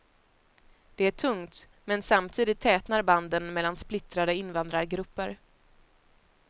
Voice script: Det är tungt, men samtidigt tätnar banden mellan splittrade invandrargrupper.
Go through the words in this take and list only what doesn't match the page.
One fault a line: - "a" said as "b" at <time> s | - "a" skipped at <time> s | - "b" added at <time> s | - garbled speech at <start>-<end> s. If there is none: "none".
none